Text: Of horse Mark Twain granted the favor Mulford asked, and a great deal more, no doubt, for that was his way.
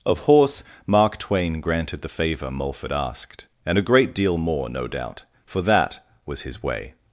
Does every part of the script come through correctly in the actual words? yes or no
yes